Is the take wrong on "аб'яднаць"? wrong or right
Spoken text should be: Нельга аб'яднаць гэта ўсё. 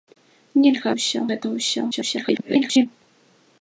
wrong